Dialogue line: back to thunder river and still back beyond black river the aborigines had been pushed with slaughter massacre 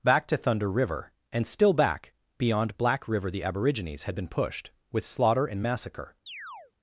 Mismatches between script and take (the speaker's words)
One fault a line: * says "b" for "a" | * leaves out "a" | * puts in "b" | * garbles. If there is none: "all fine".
* puts in "and"